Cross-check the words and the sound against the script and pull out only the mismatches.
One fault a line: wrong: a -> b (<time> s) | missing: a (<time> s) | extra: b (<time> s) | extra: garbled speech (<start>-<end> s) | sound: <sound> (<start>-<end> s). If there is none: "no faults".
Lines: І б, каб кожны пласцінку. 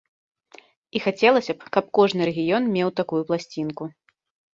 extra: хацелася (1.0 s)
extra: рэгіён меў такую (2.3 s)